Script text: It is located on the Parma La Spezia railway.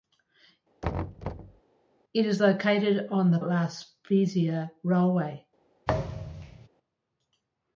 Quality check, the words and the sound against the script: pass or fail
fail